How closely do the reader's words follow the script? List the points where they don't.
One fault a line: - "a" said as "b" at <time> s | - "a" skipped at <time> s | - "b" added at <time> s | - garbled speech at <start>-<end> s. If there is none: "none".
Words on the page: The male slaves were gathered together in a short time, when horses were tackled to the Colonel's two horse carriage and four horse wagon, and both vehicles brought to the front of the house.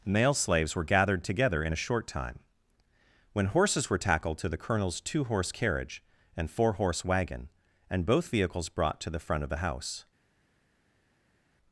- "The" skipped at 0.1 s